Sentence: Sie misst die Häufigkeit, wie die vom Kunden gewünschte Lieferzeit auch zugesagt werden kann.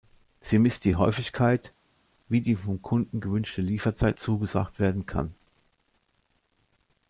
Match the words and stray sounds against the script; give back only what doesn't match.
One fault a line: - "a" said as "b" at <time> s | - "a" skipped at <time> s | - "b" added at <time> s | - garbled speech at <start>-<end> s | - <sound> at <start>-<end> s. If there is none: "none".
- "auch" skipped at 4.2 s